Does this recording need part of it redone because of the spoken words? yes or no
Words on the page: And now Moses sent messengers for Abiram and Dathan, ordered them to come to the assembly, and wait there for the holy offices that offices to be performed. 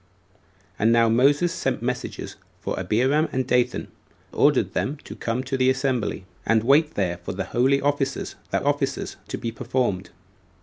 no